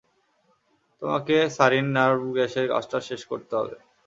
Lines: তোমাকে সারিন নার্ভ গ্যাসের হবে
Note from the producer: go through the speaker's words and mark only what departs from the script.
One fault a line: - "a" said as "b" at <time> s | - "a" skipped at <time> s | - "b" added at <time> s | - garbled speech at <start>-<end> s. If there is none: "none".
- "কাজটা শেষ করতে" added at 2.7 s